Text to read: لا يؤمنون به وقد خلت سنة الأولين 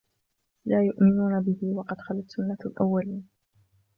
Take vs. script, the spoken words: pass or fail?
pass